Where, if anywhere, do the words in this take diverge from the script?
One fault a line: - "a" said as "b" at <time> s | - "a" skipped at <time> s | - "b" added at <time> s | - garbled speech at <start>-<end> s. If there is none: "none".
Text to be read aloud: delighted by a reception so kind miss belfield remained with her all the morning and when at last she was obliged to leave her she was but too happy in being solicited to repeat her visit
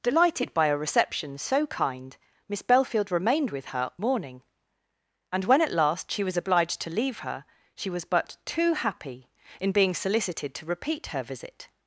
- "all the" skipped at 3.9 s